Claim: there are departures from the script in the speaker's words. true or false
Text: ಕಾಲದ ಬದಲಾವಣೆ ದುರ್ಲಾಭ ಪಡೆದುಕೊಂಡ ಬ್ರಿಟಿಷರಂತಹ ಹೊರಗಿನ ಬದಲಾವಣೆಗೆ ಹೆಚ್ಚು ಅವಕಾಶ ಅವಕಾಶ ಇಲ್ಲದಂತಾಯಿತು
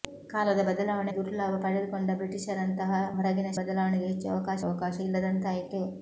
false